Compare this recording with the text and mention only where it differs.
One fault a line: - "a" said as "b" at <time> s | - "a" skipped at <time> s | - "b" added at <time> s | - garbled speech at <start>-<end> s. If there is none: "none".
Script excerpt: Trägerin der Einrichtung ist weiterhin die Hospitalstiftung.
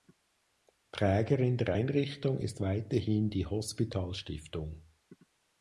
none